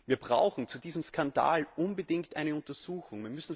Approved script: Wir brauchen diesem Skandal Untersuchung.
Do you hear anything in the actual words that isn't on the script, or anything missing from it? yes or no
yes